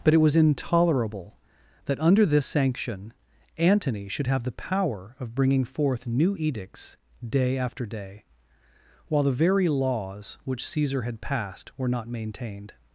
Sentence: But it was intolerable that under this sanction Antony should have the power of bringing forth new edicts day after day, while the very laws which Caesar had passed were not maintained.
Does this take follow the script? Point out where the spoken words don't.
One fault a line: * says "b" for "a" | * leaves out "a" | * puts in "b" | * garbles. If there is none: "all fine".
all fine